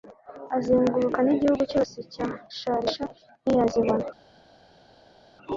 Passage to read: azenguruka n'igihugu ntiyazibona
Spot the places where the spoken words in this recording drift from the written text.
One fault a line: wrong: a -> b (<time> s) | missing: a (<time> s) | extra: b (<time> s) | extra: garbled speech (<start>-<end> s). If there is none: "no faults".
extra: cyose cya shalisha (1.7 s)